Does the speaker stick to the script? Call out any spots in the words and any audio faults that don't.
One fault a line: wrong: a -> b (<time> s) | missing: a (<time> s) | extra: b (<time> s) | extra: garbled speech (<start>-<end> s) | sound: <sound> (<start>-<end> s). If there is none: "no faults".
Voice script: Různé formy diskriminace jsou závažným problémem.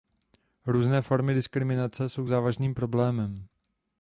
no faults